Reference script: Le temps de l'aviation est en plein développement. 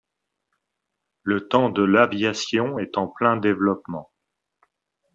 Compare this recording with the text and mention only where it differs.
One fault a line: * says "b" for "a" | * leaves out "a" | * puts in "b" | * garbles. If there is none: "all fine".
all fine